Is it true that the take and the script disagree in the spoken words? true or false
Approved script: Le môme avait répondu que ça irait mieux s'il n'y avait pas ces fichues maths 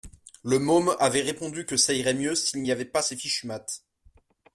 false